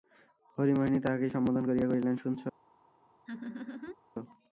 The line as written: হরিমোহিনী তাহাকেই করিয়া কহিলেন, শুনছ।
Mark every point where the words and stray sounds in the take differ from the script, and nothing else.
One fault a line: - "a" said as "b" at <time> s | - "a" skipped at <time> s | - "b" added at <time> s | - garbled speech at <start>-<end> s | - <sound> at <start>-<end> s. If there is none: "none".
- "সম্বোধন" added at 1.4 s
- laugh at 3.3-4.0 s